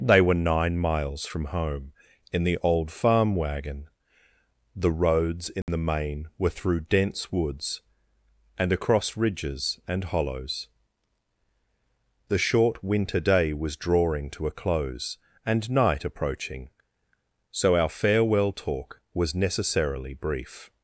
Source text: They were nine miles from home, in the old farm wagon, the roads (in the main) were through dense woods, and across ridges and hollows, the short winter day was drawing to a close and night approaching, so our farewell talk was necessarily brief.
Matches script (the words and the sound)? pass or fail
fail